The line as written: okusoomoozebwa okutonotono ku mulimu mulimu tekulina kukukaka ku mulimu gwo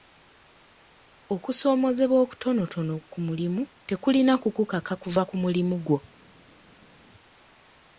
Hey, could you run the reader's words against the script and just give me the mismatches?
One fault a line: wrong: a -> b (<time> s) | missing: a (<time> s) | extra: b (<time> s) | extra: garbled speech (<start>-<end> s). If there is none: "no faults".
missing: mulimu (3.6 s)
extra: kuva (5.0 s)